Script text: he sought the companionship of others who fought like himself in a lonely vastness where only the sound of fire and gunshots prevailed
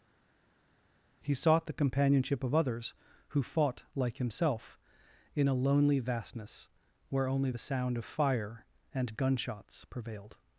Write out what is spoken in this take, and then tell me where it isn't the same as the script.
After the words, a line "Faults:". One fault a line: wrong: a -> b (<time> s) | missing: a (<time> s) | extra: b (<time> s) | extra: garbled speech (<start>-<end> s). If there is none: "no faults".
he sought the companionship of others who fought like himself in a lonely vastness where only the sound of fire and gunshots prevailed
Faults:
no faults